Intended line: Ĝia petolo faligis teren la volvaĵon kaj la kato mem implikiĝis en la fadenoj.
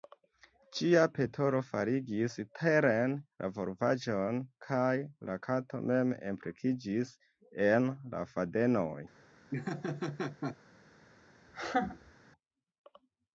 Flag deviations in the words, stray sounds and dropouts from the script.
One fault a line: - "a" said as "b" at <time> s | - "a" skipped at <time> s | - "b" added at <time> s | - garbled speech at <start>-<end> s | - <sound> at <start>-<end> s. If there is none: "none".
- laugh at 9.5-10.6 s
- laugh at 11.5-12.1 s